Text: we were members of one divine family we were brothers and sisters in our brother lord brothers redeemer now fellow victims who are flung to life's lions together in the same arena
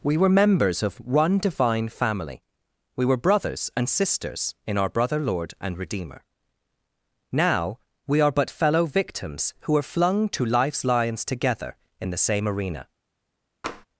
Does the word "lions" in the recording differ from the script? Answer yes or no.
no